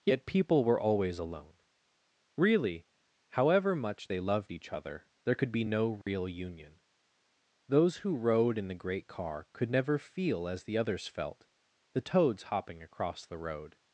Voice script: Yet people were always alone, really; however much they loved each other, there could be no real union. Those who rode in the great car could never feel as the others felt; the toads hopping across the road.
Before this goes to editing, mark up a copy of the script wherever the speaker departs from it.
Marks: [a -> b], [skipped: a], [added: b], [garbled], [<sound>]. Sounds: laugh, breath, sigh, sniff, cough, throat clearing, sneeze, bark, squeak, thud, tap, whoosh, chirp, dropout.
Yet people were always alone, really; however much they loved each other, there could be no real [dropout] union. Those who rode in the great car could never feel as the others felt; the toads hopping across the road.